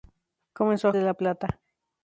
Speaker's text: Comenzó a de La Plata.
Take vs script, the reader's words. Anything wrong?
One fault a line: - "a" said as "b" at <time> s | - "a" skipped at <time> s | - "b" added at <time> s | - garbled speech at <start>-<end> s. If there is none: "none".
none